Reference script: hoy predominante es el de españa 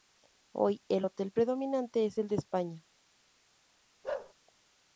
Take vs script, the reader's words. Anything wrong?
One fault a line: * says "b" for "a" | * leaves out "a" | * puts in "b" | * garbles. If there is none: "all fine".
* puts in "el hotel"